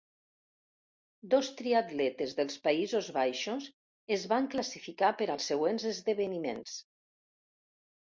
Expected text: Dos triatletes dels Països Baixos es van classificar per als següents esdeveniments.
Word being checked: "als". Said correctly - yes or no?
yes